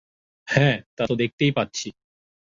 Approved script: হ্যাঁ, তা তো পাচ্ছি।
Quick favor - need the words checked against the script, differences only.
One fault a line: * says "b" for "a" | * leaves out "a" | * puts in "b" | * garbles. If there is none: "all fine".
* puts in "দেখতেই"